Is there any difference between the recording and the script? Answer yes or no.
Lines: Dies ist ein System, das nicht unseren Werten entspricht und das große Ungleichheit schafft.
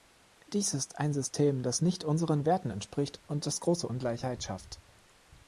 no